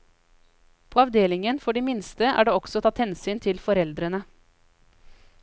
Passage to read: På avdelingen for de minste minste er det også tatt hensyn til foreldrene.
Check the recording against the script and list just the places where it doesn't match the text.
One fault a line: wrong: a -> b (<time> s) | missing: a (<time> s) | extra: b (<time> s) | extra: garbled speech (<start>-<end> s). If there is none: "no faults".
missing: minste (2.3 s)